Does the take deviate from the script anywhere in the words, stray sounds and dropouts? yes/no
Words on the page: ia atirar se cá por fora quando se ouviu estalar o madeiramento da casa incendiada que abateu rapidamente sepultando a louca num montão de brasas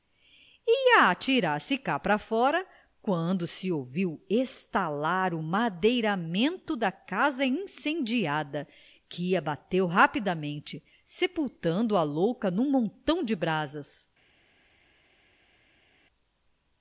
yes